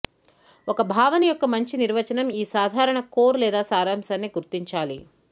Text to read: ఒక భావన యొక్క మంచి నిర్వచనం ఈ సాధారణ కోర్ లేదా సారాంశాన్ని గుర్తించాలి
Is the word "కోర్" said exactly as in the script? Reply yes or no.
yes